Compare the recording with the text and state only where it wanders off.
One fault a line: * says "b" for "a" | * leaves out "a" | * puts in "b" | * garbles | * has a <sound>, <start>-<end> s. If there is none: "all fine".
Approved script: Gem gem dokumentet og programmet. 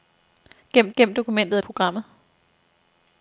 all fine